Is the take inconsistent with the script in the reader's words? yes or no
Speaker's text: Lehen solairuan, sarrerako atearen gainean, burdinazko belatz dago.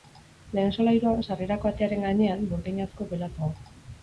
no